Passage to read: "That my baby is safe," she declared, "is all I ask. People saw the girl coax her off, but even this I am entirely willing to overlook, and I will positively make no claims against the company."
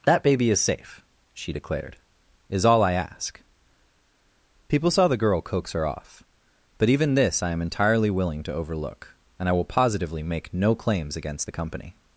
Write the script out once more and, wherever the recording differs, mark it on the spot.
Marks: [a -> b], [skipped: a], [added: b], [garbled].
"That [skipped: my] baby is safe," she declared, "is all I ask. People saw the girl coax her off, but even this I am entirely willing to overlook, and I will positively make no claims against the company."